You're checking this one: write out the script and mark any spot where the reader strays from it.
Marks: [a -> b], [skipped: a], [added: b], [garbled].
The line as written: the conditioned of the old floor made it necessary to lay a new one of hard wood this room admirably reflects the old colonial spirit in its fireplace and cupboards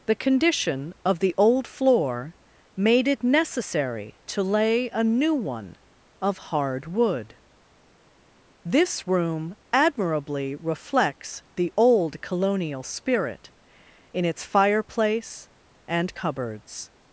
the [conditioned -> condition] of the old floor made it necessary to lay a new one of hard wood this room admirably reflects the old colonial spirit in its fireplace and cupboards